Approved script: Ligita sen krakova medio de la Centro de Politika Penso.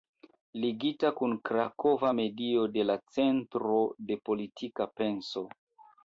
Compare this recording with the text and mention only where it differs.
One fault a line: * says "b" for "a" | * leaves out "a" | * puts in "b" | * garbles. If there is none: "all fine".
* says "kun" for "sen"